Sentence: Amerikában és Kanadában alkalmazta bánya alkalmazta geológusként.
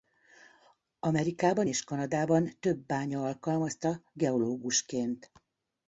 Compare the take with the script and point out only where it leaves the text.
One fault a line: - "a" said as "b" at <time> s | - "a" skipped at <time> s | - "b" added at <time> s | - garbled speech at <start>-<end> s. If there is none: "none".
- "alkalmazta" said as "több" at 2.6 s